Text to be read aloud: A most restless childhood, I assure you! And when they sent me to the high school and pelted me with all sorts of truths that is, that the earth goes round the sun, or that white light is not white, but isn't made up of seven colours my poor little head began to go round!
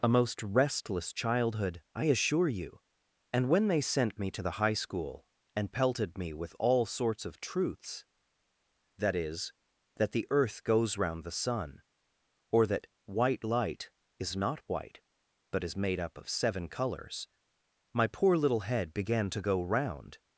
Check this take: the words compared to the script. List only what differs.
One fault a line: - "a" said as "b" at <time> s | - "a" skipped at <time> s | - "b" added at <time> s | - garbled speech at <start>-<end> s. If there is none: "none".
- "isn't" said as "is" at 15.6 s